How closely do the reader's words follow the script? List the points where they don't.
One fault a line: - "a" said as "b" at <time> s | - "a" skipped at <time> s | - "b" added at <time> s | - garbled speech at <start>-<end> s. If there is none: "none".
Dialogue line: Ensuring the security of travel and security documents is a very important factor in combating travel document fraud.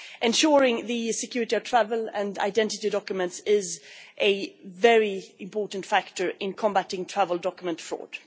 - "security" said as "identity" at 2.4 s